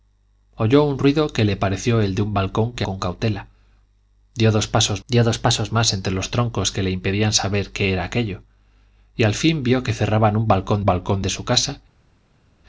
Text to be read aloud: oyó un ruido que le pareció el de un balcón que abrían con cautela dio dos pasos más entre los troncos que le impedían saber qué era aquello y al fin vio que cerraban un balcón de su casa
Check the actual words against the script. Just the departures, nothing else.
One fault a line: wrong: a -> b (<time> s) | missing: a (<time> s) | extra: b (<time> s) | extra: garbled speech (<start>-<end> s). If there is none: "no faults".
missing: abrían (2.9 s)
extra: dio dos pasos (5.1 s)
extra: balcón (10.8 s)